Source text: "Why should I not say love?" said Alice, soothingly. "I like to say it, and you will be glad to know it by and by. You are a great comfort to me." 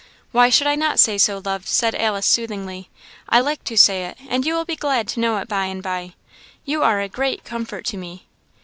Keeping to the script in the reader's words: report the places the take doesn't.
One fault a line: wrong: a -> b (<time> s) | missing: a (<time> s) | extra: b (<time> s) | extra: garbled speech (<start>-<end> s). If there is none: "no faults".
extra: so (1.2 s)